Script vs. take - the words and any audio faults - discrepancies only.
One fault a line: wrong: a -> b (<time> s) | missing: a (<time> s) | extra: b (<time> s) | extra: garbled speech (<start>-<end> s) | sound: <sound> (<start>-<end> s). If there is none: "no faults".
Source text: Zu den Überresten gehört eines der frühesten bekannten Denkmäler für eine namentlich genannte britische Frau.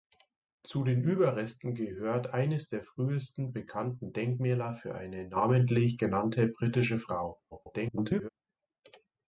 extra: garbled speech (7.5-8.3 s)